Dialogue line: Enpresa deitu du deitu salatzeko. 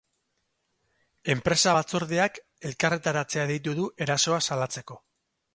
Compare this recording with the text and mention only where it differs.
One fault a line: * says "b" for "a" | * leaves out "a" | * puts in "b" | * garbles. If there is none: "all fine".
* puts in "batzordeak elkarretaratzea"
* says "erasoa" for "deitu"